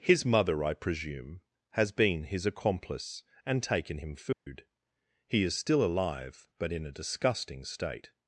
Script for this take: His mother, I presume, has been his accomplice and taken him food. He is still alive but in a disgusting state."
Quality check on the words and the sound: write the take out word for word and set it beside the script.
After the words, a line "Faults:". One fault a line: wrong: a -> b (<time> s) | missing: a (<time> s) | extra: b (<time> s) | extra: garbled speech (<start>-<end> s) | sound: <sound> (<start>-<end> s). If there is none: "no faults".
His mother, I presume, has been his accomplice and taken him food. He is still alive but in a disgusting state."
Faults:
sound: dropout (4.3-4.5 s)